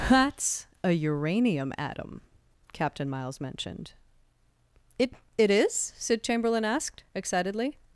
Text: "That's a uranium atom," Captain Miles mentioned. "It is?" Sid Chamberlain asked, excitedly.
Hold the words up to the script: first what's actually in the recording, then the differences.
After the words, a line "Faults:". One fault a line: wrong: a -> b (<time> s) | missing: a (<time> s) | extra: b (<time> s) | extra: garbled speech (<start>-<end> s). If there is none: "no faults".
"That's a uranium atom," Captain Miles mentioned. "It It is?" Sid Chamberlain asked, excitedly.
Faults:
extra: It (5.4 s)